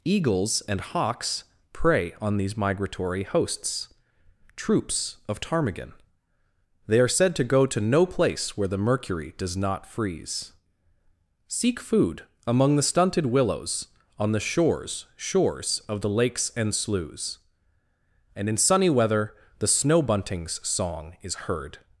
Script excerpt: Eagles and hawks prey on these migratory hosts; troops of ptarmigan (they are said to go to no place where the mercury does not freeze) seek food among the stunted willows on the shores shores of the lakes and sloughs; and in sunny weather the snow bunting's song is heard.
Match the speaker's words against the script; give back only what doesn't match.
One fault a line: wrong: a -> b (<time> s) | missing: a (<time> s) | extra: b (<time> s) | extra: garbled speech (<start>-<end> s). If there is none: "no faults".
no faults